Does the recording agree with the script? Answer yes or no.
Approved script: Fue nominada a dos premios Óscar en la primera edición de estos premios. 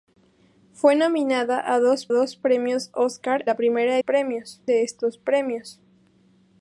no